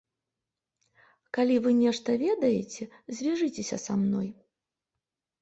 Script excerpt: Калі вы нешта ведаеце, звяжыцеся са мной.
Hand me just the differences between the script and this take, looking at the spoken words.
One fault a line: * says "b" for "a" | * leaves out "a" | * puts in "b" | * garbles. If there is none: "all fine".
all fine